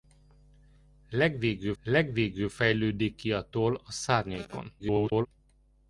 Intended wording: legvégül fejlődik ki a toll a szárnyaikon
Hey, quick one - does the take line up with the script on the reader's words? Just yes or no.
no